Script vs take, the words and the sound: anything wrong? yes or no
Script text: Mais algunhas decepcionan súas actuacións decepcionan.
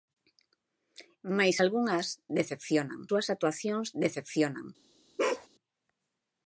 yes